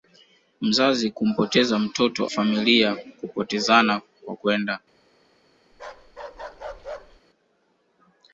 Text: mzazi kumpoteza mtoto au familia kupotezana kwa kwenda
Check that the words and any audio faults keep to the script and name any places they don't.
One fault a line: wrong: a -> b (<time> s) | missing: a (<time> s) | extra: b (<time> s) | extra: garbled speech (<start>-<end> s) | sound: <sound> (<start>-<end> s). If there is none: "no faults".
missing: au (2.3 s)
sound: bark (5.7-7.2 s)